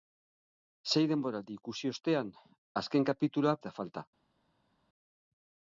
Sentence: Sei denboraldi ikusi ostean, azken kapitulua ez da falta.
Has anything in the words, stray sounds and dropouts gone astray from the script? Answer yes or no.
no